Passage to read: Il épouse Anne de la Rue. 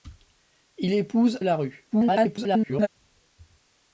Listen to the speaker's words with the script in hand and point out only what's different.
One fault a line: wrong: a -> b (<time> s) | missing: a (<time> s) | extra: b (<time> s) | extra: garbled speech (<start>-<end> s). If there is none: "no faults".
missing: Anne de (1.4 s)
extra: garbled speech (1.9-2.9 s)